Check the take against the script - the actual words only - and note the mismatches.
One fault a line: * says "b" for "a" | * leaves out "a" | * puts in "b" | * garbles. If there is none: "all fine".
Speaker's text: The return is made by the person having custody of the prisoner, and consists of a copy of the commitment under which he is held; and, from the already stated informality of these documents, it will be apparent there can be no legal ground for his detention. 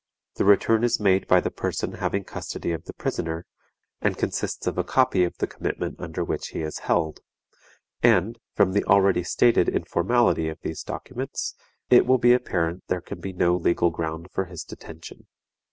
all fine